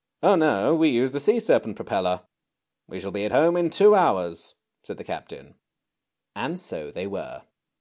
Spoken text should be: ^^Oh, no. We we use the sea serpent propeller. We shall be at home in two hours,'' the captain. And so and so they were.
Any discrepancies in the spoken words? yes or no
yes